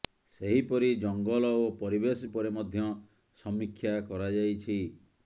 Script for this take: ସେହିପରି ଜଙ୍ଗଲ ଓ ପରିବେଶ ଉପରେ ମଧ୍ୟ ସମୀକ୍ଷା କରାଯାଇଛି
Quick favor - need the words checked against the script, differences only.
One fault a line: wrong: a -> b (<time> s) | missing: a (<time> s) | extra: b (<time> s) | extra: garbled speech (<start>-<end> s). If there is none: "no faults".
no faults